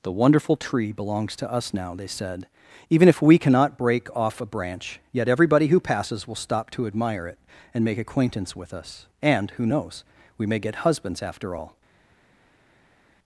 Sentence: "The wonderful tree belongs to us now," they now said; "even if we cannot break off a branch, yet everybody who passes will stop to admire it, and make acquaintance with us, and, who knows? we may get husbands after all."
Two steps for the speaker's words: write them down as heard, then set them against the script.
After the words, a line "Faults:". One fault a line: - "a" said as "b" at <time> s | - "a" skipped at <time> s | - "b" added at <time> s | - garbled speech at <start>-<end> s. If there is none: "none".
"The wonderful tree belongs to us now," they said; "even if we cannot break off a branch, yet everybody who passes will stop to admire it, and make acquaintance with us, and, who knows? we may get husbands after all."
Faults:
- "now" skipped at 2.1 s